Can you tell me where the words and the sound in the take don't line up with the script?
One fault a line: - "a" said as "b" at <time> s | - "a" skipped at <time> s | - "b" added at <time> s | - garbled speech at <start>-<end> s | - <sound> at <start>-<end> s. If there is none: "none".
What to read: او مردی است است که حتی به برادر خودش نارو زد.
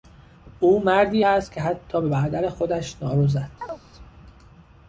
- "است" skipped at 1.5 s
- chirp at 3.6-3.8 s